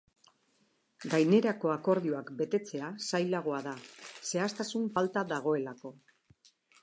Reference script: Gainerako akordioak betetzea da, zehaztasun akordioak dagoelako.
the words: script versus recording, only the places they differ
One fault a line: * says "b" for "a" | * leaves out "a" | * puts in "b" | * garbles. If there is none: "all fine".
* puts in "zailagoa"
* says "falta" for "akordioak"